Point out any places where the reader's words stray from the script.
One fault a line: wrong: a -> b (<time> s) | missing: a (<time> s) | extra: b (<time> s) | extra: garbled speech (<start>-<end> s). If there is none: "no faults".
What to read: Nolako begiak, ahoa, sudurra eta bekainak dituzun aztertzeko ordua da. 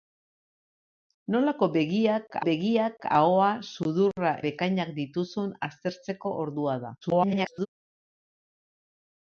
extra: begiak (2.5 s)
missing: eta (4.3 s)
extra: garbled speech (7.0-7.7 s)